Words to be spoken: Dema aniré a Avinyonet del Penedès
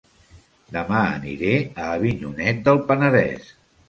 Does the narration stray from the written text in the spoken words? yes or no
no